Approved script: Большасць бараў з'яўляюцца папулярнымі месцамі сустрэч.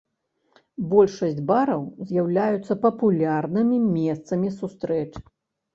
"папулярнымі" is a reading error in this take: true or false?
false